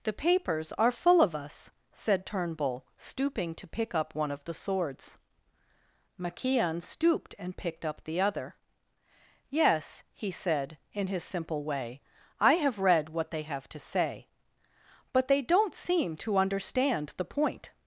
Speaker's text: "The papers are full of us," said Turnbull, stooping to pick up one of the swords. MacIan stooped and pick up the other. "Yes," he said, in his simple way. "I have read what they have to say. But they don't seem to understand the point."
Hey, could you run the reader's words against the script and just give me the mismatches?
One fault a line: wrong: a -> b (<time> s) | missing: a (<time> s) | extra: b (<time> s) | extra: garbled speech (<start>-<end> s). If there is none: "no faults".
wrong: pick -> picked (7.6 s)